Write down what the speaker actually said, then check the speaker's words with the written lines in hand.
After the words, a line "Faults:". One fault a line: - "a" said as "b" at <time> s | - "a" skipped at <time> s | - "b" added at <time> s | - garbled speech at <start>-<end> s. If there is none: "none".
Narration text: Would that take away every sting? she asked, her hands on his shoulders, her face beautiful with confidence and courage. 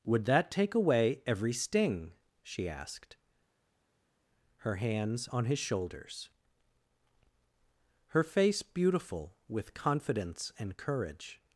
Would that take away every sting? she asked, her hands on his shoulders, her face beautiful with confidence and courage.
Faults:
none